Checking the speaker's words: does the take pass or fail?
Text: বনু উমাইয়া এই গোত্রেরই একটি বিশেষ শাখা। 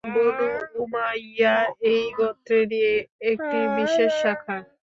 pass